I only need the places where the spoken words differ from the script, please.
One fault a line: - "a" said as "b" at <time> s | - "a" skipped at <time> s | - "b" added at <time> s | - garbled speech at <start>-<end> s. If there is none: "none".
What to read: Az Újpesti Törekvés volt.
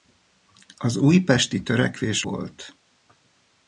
none